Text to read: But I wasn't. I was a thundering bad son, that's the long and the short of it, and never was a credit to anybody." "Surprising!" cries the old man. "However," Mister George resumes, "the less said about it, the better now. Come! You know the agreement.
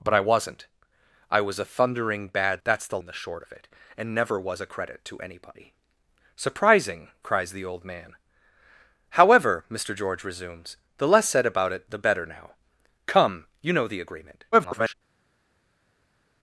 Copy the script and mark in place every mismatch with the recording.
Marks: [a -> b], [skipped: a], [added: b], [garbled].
But I wasn't. I was a thundering bad [skipped: son,] that's the [skipped: long] and the short of it, and never was a credit to anybody." "Surprising!" cries the old man. "However," Mister George resumes, "the less said about it, the better now. Come! You know the agreement. [garbled]